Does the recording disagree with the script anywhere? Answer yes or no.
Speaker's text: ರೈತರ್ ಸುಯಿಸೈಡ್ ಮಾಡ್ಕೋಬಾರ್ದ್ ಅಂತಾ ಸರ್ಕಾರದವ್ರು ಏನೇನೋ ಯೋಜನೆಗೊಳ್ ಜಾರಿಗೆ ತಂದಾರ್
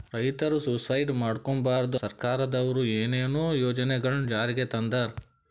yes